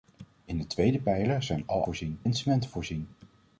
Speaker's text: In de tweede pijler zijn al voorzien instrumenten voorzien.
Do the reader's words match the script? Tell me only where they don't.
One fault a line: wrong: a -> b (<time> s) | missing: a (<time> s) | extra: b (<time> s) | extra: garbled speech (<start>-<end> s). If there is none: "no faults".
no faults